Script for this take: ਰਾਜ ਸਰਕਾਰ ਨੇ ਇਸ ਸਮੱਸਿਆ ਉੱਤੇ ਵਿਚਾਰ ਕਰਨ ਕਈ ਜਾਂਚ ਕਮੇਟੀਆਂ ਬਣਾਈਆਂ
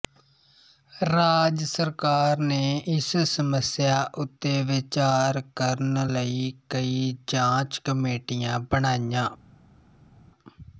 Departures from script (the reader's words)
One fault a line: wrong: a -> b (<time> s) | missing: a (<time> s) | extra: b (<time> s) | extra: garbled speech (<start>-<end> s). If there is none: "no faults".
extra: ਲਈ (6.1 s)